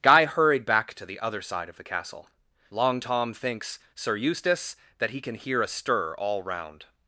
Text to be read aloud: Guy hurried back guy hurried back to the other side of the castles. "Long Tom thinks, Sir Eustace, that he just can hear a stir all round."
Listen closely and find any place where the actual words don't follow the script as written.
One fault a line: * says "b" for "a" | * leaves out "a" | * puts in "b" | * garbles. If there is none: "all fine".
* leaves out "guy hurried back"
* says "castle" for "castles"
* leaves out "just"